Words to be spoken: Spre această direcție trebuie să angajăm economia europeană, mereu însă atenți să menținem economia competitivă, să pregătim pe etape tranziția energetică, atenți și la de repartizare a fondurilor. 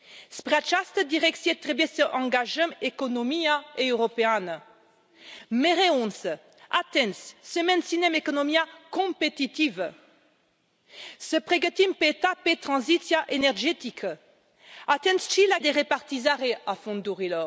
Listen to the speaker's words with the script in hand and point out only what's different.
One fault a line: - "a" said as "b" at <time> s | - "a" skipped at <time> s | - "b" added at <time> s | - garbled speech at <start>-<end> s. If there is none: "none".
none